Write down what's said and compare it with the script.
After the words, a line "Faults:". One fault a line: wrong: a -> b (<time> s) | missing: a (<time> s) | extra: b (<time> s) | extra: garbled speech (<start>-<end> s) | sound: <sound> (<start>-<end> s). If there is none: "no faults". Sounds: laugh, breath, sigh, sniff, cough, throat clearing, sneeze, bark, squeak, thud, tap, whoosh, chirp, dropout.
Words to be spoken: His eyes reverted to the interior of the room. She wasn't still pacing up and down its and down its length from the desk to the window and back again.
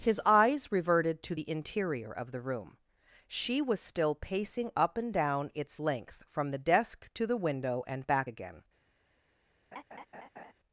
His eyes reverted to the interior of the room. She was still pacing up and down its length from the desk to the window and back again.
Faults:
wrong: wasn't -> was (3.6 s)
missing: and down its (5.8 s)
sound: laugh (9.7-10.5 s)